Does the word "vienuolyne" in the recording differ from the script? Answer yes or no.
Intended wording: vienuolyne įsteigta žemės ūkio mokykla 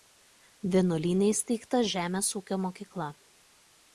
no